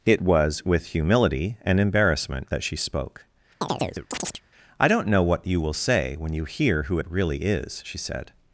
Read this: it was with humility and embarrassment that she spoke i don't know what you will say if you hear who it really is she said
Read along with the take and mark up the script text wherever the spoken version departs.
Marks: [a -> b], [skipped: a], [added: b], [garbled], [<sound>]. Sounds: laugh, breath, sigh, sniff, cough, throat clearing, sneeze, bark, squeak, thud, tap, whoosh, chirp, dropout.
it was with humility and embarrassment that she spoke [chirp] i don't know what you will say [if -> when] you hear who it really is she said